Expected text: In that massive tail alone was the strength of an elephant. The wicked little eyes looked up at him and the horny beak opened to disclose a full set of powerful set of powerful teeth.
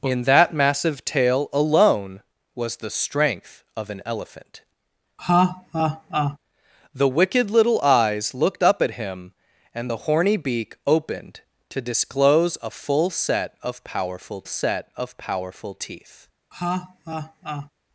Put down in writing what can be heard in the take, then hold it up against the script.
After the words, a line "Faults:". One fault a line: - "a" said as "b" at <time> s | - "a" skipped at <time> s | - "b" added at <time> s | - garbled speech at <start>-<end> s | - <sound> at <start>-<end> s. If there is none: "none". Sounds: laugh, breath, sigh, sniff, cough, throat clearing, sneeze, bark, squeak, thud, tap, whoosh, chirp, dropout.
In that massive tail alone was the strength of an elephant. The wicked little eyes looked up at him and the horny beak opened to disclose a full set of powerful set of powerful teeth.
Faults:
- laugh at 5.2-6.4 s
- laugh at 16.5-17.7 s